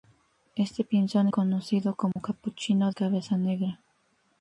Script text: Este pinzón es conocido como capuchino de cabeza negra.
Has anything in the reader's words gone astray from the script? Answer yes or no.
yes